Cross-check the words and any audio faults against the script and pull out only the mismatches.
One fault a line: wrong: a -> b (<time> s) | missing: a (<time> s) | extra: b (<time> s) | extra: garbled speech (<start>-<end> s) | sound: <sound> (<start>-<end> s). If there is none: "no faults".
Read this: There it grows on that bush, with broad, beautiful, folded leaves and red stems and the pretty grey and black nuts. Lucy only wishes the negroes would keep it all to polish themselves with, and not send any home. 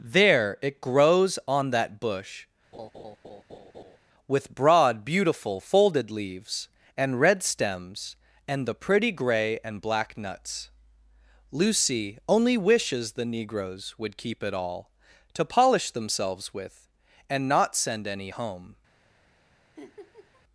sound: laugh (2.7-4.0 s)
sound: laugh (19.8-20.4 s)